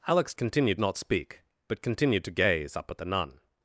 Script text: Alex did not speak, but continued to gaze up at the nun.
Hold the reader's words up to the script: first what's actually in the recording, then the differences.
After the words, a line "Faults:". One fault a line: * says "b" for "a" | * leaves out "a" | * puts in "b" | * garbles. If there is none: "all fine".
Alex continued not speak, but continued to gaze up at the nun.
Faults:
* says "continued" for "did"